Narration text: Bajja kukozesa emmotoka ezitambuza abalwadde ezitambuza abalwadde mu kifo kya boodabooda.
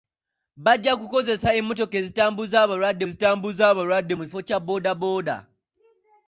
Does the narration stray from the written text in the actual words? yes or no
no